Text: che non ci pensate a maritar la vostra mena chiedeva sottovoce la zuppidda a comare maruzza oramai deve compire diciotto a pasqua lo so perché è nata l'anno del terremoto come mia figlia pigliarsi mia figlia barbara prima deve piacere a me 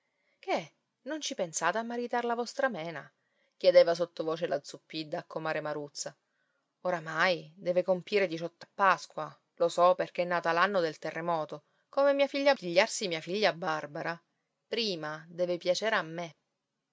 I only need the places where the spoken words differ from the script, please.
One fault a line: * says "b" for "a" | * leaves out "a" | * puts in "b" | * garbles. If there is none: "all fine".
all fine